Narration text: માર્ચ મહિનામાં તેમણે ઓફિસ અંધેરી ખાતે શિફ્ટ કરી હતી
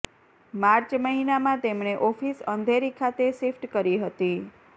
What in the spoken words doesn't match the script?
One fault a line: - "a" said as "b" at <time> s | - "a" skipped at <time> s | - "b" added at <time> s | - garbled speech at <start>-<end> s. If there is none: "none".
none